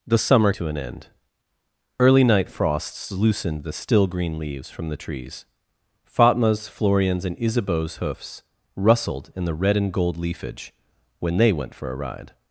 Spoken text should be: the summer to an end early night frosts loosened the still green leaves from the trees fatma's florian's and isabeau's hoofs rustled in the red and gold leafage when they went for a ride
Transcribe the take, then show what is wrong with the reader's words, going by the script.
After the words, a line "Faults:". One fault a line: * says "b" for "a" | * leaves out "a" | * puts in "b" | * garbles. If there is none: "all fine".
the summer to an end early night frosts loosened the still green leaves from the trees fatma's florian's and isabeau's hoofs rustled in the red and gold leafage when they went for a ride
Faults:
all fine